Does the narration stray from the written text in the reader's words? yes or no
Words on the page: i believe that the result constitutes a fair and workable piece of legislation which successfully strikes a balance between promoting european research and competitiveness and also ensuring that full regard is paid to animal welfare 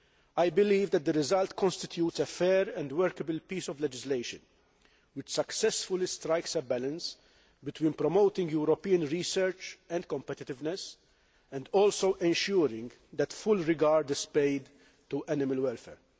no